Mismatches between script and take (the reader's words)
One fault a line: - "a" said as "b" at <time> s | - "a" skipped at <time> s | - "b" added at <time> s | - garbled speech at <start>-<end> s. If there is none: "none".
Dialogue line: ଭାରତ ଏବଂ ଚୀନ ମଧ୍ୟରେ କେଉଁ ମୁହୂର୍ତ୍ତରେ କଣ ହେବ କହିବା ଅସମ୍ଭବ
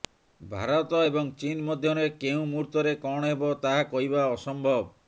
- "ତାହା" added at 3.6 s